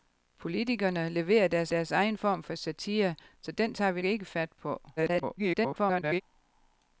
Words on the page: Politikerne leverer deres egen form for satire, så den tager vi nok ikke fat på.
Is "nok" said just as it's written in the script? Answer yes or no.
no